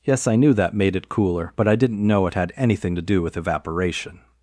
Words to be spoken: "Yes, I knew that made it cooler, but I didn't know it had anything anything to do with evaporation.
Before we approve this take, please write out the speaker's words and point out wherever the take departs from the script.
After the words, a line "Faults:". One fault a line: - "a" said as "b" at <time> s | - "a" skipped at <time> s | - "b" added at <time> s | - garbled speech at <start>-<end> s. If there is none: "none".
"Yes, I knew that made it cooler, but I didn't know it had anything to do with evaporation.
Faults:
- "anything" skipped at 2.9 s